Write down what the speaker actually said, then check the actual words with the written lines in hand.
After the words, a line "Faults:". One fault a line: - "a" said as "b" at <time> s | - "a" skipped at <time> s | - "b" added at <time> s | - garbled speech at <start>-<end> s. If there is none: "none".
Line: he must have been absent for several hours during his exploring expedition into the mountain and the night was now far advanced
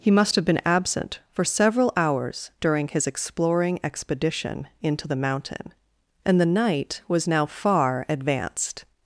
he must have been absent for several hours during his exploring expedition into the mountain and the night was now far advanced
Faults:
none